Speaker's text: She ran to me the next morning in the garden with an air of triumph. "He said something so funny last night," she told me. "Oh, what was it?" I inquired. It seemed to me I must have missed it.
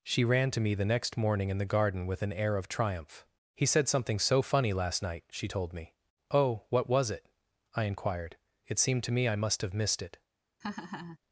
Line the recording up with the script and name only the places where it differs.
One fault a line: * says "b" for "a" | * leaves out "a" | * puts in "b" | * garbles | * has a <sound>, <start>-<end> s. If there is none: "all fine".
* has a laugh, 10.6-11.2 s